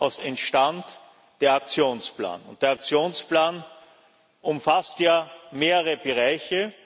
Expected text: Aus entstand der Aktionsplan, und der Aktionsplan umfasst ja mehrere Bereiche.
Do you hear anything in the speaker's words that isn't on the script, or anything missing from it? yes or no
no